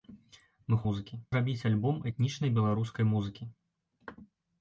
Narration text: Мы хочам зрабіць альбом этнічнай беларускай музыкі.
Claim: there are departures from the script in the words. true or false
true